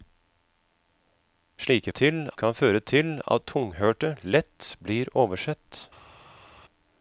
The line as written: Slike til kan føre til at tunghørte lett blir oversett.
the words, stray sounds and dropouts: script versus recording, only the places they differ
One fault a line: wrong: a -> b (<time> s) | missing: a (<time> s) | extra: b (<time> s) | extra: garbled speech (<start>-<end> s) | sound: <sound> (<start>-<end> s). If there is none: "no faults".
no faults